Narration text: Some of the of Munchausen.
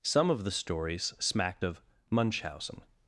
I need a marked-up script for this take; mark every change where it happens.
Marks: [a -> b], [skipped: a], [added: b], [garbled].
Some of the [added: stories smacked] of Munchausen.